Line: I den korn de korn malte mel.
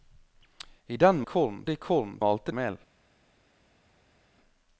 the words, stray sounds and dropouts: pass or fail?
pass